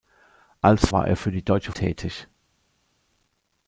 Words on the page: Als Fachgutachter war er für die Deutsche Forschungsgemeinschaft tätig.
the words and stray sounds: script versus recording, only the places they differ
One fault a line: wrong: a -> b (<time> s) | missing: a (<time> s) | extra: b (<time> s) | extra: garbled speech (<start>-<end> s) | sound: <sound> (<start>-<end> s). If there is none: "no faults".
missing: Fachgutachter (0.9 s)
missing: Forschungsgemeinschaft (1.7 s)